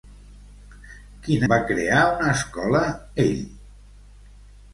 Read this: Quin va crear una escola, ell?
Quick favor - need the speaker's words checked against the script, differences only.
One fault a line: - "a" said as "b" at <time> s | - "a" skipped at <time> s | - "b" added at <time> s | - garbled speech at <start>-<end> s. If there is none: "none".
none